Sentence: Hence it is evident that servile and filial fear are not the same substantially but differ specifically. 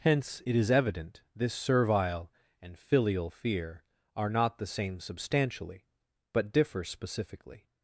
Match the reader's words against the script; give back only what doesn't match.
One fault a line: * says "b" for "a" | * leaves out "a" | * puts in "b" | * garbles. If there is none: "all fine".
* says "this" for "that"